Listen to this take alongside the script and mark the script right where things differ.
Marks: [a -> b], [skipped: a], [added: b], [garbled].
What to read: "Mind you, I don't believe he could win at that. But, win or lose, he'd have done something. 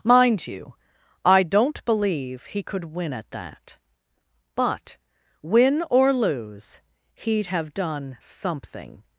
"Mind you, I don't believe he could win at that. But, win or lose, he'd have done something.